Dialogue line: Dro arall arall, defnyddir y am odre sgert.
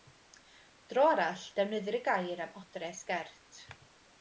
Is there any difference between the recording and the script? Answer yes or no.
yes